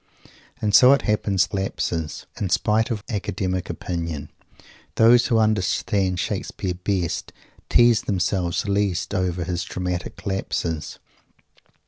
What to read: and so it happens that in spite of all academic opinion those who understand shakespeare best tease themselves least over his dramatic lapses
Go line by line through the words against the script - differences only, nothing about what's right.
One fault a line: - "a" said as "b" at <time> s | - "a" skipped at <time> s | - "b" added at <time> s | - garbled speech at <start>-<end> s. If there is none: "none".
- "that" said as "lapses" at 1.5 s
- "all" skipped at 3.0 s